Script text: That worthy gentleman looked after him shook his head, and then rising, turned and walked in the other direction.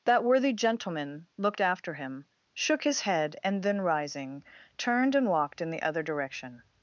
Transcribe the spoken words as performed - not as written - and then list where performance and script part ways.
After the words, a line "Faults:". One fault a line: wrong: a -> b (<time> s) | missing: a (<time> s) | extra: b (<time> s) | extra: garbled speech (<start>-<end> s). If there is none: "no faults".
That worthy gentleman looked after him shook his head, and then rising, turned and walked in the other direction.
Faults:
no faults